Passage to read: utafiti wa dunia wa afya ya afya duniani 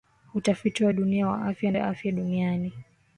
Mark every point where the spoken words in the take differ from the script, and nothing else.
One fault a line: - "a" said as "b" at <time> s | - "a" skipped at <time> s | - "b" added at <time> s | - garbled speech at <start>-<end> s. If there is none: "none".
none